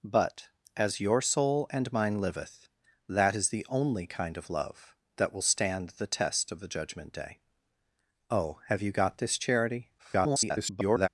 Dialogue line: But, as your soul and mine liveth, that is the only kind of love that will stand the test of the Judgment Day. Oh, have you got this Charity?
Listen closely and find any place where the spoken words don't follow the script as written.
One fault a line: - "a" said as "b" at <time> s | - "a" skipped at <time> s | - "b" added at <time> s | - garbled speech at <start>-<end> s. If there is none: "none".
- garbled speech at 10.0-11.1 s